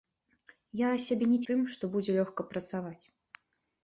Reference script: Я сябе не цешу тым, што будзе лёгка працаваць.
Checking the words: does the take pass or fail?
fail